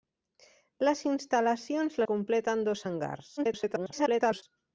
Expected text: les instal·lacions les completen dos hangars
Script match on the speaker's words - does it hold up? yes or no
no